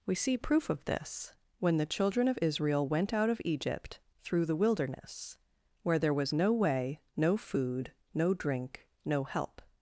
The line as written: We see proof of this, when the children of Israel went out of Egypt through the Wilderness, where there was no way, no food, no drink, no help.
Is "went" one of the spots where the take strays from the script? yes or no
no